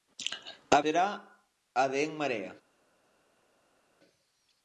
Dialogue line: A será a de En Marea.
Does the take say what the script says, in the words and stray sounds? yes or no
yes